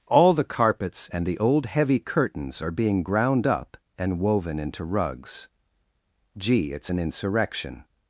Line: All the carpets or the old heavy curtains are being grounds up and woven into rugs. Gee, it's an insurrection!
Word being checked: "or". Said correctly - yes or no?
no